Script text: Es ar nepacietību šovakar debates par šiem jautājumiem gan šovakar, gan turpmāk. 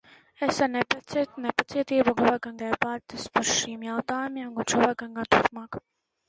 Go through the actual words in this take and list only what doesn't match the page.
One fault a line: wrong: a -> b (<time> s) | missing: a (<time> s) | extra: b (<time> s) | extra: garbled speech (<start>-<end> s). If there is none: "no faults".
no faults